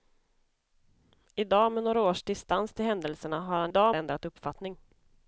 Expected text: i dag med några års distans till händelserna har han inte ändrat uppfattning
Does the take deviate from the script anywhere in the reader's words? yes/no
yes